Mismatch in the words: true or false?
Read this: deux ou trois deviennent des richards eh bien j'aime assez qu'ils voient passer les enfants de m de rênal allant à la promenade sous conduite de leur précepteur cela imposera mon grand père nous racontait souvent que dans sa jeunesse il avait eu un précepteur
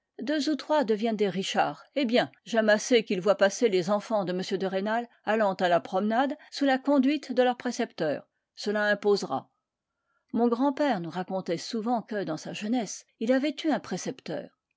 true